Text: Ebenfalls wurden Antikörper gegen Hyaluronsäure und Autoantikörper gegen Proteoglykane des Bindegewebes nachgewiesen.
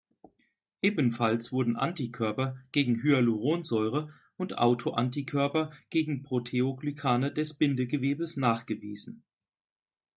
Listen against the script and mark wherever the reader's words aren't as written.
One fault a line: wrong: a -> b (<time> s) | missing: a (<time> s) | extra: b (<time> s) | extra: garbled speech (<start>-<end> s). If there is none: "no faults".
no faults